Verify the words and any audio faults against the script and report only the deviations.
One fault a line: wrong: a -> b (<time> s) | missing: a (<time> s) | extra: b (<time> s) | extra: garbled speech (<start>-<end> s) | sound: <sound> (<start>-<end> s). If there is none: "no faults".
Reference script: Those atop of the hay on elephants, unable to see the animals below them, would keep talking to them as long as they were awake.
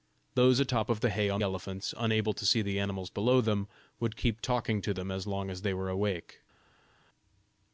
no faults